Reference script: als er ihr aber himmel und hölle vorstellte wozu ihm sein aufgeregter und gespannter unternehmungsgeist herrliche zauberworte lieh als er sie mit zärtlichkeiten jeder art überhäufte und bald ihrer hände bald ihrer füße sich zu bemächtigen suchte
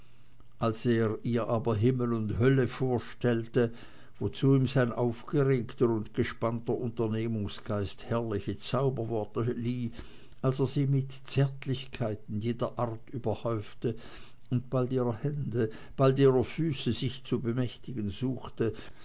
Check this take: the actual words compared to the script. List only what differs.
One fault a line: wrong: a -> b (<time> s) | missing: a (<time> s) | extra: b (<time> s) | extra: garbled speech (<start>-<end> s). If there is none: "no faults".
no faults